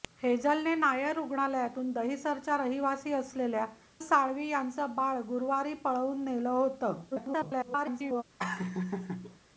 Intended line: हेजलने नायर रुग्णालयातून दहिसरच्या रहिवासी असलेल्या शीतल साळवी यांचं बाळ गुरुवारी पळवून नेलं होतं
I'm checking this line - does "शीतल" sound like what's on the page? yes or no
no